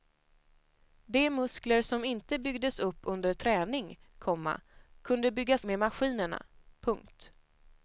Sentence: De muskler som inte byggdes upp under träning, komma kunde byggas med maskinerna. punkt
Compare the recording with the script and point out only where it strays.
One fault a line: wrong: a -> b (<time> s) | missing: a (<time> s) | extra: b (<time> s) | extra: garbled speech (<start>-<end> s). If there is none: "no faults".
no faults